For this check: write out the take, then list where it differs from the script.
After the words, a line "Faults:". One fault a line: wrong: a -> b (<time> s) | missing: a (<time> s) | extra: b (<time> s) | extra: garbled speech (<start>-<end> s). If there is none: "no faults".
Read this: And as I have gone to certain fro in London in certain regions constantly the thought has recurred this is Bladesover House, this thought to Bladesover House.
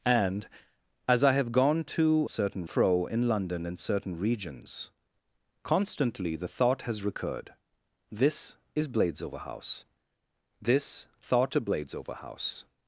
And as I have gone to certain fro in London in certain regions constantly the thought has recurred this is Bladesover House, this thought to Bladesover House.
Faults:
no faults